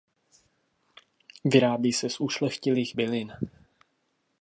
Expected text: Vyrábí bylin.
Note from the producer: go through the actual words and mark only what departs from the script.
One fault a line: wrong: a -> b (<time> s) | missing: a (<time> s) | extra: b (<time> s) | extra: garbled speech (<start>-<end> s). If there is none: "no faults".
extra: se z ušlechtilých (1.9 s)